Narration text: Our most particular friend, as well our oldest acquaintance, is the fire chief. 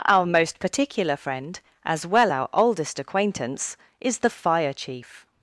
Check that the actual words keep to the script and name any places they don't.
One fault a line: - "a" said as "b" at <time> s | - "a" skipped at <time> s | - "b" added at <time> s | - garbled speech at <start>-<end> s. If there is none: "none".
none